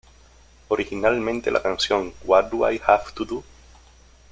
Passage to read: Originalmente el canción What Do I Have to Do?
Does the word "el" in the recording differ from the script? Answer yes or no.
yes